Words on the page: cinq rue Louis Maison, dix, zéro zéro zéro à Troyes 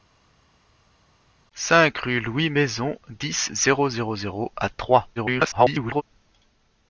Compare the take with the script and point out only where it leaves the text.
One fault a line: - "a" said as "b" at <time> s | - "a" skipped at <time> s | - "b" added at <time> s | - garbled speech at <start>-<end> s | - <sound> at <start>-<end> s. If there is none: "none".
- garbled speech at 5.2-6.0 s